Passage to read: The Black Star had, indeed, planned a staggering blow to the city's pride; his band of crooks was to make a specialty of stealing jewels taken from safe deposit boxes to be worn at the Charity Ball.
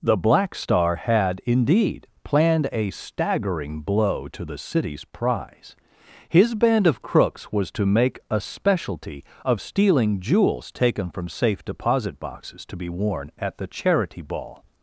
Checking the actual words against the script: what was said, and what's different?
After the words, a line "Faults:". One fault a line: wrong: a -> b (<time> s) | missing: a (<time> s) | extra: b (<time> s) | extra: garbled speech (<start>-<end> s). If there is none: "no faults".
The Black Star had, indeed, planned a staggering blow to the city's prize; his band of crooks was to make a specialty of stealing jewels taken from safe deposit boxes to be worn at the Charity Ball.
Faults:
wrong: pride -> prize (5.0 s)